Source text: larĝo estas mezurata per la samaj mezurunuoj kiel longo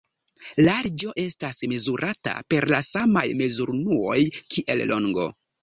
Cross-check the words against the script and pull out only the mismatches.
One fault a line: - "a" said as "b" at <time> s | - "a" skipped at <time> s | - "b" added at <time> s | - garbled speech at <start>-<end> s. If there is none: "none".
none